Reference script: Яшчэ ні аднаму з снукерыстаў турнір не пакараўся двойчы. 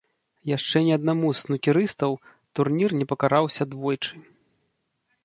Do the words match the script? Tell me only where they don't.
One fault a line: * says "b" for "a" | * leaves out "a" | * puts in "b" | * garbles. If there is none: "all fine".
all fine